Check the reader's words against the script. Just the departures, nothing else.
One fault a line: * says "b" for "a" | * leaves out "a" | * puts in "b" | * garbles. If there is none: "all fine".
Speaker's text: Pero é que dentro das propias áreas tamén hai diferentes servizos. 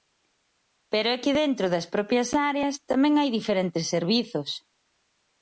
all fine